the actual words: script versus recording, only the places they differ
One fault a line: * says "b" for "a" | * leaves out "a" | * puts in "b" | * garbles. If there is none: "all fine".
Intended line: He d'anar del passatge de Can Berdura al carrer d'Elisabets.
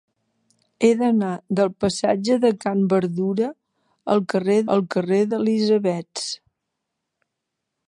* puts in "al carrer"